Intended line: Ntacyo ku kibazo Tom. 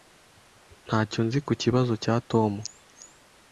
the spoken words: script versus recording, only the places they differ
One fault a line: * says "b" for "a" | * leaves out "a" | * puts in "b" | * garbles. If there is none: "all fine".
* puts in "nzi"
* puts in "cya"